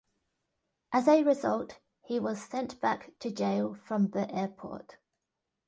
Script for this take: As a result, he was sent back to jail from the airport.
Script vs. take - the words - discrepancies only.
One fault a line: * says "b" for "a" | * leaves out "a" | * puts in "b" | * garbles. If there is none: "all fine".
all fine